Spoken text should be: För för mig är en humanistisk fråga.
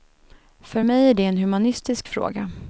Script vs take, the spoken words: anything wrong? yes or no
yes